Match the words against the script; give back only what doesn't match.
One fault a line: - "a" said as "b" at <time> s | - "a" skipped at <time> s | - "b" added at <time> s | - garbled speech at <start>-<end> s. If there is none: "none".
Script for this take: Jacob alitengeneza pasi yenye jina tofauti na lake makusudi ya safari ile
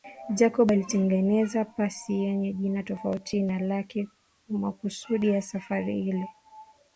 none